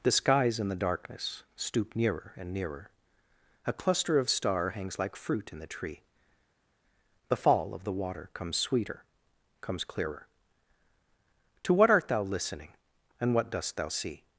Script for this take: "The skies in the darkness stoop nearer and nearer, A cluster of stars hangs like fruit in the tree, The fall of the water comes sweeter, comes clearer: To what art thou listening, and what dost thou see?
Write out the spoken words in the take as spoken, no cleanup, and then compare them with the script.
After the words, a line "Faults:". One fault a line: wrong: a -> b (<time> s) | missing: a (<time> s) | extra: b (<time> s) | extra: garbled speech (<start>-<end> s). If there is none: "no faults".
"The skies in the darkness stoop nearer and nearer, A cluster of star hangs like fruit in the tree, The fall of the water comes sweeter, comes clearer: To what art thou listening, and what dost thou see?
Faults:
wrong: stars -> star (4.3 s)